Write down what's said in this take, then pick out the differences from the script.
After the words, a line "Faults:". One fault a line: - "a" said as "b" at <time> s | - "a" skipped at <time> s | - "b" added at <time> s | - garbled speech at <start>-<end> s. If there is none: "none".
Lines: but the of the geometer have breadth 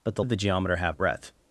but the of the geometer have breadth
Faults:
none